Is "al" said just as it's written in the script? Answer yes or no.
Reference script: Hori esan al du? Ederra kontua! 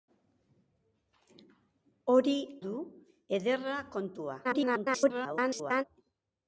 no